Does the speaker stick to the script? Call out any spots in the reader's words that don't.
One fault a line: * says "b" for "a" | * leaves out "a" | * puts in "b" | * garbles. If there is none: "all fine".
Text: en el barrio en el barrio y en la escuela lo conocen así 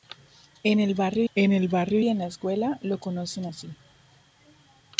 all fine